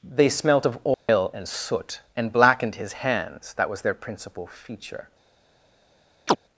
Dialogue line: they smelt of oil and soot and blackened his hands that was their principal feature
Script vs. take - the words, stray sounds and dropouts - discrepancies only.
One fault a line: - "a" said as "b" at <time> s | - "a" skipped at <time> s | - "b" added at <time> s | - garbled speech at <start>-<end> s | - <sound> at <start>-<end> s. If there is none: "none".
- dropout at 0.9-1.1 s
- chirp at 6.3-6.4 s